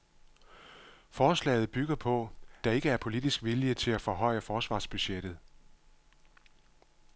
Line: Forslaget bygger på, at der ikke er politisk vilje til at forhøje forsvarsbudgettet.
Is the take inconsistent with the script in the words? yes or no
yes